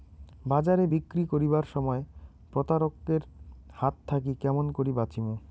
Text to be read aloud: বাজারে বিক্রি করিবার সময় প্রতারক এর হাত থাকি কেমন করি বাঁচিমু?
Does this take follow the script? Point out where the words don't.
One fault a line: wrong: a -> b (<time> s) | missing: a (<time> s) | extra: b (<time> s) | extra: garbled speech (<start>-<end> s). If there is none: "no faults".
no faults